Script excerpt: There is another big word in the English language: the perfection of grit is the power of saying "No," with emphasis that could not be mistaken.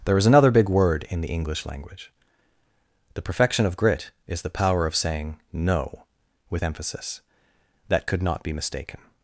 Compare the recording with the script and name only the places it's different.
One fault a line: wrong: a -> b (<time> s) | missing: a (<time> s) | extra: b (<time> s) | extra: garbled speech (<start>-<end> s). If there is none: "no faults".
no faults